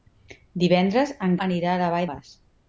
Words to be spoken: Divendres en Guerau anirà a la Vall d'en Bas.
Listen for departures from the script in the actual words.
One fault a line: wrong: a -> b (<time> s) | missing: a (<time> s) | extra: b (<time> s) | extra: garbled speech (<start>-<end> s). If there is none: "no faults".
missing: Guerau (1.4 s)
missing: d'en (2.1 s)